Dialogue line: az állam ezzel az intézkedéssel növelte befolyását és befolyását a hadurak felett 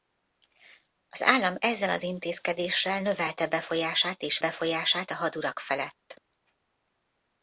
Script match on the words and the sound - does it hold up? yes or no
yes